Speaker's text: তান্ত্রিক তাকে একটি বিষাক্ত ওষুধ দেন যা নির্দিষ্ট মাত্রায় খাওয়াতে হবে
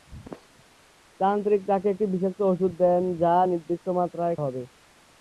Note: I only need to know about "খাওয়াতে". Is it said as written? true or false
false